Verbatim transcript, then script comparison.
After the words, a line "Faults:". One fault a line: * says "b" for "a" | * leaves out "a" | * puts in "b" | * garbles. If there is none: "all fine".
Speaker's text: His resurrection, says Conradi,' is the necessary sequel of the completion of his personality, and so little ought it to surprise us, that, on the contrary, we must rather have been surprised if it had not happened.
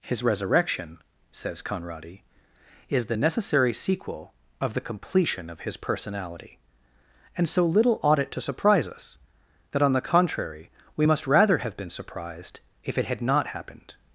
His resurrection, says Conradi,' is the necessary sequel of the completion of his personality, and so little ought it to surprise us, that, on the contrary, we must rather have been surprised if it had not happened.
Faults:
all fine